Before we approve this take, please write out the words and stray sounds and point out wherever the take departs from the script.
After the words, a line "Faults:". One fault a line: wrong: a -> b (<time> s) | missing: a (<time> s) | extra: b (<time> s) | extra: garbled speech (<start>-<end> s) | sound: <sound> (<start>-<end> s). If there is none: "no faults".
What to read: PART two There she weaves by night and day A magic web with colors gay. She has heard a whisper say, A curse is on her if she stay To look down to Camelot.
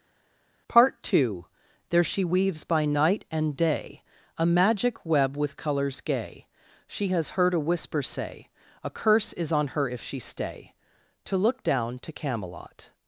PART two There she weaves by night and day A magic web with colors gay. She has heard a whisper say, A curse is on her if she stay To look down to Camelot.
Faults:
no faults